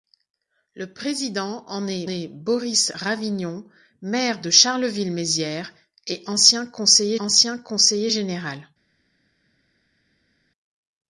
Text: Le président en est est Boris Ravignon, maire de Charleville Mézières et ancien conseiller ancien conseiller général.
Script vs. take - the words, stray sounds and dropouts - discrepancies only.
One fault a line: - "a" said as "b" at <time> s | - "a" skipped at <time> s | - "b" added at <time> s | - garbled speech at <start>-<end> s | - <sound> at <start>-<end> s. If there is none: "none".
none